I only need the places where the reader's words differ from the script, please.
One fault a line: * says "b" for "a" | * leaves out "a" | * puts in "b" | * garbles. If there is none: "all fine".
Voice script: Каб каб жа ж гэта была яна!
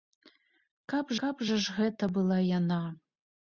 all fine